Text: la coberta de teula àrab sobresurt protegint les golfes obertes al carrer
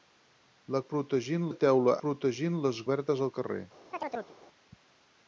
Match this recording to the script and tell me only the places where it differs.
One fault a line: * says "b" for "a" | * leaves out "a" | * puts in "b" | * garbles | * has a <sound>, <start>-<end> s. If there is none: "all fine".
* says "protegint" for "coberta"
* leaves out "àrab sobresurt"
* leaves out "golfes"
* has a chirp, 3.9-4.4 s